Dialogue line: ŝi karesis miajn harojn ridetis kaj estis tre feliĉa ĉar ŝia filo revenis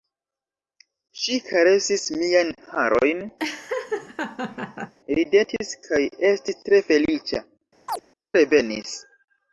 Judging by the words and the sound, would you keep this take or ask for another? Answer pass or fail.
fail